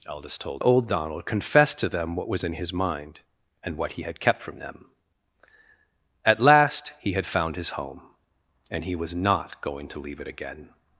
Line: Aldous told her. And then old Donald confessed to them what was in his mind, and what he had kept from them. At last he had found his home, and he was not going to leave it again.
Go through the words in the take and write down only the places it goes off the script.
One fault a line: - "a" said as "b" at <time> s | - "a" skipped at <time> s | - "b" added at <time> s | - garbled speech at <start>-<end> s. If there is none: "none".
- "her And then" skipped at 0.6 s